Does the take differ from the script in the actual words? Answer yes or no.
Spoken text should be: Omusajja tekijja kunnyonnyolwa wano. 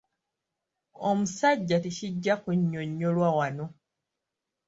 no